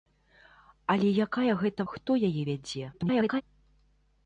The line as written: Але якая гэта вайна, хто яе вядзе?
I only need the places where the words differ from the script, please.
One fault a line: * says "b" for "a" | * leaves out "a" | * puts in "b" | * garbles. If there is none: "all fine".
* leaves out "вайна"
* garbles